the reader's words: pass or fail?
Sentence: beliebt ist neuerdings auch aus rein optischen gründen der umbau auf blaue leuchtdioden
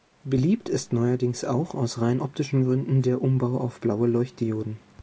pass